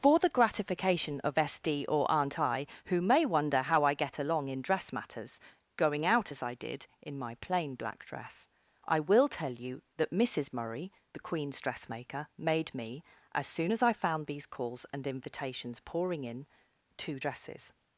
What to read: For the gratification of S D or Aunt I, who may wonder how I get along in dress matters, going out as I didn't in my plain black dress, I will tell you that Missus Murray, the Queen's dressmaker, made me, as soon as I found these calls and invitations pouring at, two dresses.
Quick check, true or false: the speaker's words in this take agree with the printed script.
false